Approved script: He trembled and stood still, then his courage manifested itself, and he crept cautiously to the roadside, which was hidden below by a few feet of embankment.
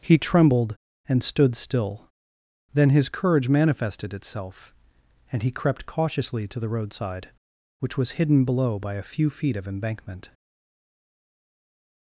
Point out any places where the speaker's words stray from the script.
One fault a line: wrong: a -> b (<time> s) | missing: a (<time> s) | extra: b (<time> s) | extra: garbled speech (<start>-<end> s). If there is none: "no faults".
no faults